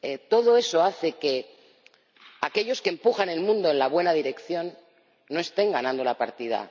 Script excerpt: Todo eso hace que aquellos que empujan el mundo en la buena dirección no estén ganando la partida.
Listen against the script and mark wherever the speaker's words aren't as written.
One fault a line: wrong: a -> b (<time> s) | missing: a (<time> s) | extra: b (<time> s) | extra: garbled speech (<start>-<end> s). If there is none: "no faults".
no faults